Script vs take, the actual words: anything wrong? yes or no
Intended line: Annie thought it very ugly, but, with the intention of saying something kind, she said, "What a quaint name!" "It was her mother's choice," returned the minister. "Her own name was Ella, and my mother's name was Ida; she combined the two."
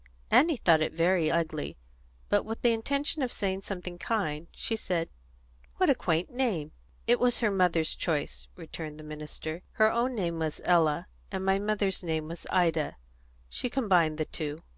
no